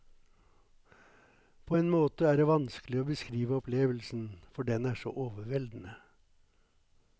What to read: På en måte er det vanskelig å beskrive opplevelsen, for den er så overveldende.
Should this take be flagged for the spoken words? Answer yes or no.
no